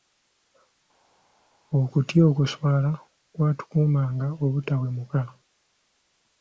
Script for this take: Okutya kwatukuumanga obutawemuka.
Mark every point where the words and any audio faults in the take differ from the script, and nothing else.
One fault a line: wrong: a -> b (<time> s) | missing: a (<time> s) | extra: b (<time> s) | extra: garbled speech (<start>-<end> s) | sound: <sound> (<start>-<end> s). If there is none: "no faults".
extra: okuswala (2.3 s)